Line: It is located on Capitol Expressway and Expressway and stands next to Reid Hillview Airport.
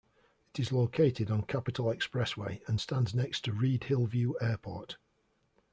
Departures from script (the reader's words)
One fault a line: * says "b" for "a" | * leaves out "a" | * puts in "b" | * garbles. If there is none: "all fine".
* leaves out "Expressway and"